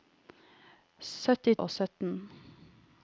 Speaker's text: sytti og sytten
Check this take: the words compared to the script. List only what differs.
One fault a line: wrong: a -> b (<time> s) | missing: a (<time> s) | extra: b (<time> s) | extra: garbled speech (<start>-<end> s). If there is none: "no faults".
no faults